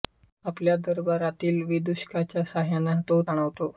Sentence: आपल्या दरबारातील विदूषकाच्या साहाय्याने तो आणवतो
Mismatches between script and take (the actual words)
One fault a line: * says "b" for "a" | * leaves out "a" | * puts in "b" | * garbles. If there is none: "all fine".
all fine